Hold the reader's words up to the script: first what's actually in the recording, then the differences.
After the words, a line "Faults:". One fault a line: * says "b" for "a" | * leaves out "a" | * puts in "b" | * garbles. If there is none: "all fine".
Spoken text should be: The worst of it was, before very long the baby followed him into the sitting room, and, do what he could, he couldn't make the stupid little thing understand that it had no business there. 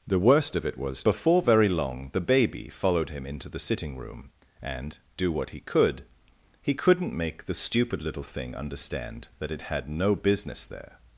The worst of it was, before very long the baby followed him into the sitting room, and, do what he could, he couldn't make the stupid little thing understand that it had no business there.
Faults:
all fine